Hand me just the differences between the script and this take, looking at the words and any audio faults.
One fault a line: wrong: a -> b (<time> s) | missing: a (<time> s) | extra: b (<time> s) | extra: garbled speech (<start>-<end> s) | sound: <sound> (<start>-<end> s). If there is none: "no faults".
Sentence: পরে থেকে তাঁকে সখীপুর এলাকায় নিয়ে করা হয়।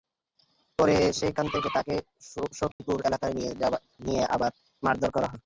extra: সেখান (1.2 s)
sound: dropout (2.7-2.8 s)
extra: আবার মারধর (4.3 s)